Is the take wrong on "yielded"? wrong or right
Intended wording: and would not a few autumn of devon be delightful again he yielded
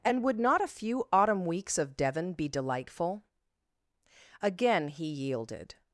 right